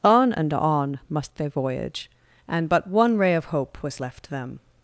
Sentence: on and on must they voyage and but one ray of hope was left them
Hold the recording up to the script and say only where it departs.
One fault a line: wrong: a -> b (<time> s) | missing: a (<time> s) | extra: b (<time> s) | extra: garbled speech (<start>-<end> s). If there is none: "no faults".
no faults